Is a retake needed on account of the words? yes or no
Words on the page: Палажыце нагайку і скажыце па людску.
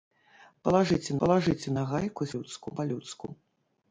yes